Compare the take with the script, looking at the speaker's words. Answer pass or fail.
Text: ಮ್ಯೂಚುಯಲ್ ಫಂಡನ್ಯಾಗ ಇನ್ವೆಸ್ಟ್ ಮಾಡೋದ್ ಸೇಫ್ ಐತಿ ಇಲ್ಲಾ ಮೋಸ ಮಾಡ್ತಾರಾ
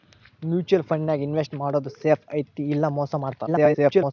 fail